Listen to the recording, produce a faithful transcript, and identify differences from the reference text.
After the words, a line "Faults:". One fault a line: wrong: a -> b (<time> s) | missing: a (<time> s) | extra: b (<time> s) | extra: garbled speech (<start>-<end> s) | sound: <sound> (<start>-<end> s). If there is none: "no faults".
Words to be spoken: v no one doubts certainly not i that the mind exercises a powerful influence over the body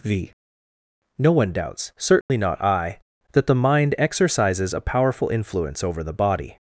v no one doubts certainly not i that the mind exercises a powerful influence over the body
Faults:
sound: dropout (2.2-2.3 s)